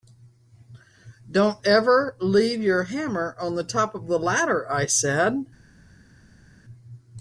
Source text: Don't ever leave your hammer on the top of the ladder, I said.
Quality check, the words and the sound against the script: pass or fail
pass